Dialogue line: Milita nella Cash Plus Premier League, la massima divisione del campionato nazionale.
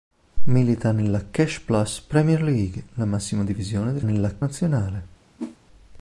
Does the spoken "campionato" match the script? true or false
false